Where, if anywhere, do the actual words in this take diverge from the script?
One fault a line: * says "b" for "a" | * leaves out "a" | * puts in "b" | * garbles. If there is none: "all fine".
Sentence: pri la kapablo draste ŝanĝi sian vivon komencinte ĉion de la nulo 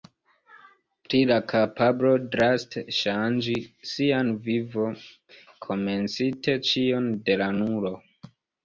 all fine